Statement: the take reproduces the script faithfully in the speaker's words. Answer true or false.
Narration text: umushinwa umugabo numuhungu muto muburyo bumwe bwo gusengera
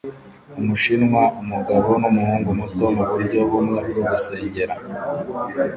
true